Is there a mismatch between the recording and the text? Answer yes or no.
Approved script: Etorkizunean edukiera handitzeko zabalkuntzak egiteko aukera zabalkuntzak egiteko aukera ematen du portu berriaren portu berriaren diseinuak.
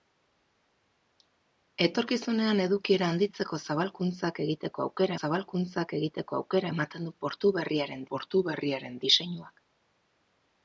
no